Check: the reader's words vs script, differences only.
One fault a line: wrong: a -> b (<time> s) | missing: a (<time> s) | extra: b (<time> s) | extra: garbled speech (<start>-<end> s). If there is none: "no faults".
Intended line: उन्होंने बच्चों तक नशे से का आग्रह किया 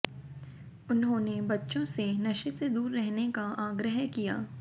wrong: तक -> से (1.9 s)
extra: दूर रहने (2.7 s)